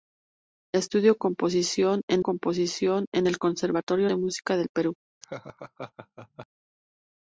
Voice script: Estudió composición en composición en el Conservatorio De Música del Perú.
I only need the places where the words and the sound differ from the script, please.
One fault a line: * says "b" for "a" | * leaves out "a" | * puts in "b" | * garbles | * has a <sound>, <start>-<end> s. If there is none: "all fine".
* has a laugh, 5.2-6.5 s